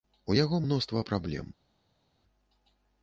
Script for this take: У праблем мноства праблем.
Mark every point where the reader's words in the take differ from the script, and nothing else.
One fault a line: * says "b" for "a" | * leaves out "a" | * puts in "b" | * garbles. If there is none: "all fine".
* says "яго" for "праблем"